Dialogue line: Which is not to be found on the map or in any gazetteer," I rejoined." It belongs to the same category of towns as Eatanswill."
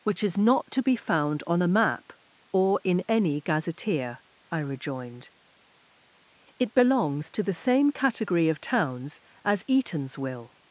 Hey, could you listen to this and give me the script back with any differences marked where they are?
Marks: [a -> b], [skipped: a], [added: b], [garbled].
Which is not to be found on [the -> a] map or in any gazetteer," I rejoined." It belongs to the same category of towns as Eatanswill."